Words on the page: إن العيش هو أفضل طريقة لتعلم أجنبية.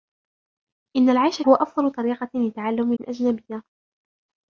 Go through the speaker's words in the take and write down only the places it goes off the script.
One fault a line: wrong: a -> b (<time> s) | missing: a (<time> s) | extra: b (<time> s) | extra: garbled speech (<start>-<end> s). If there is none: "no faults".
no faults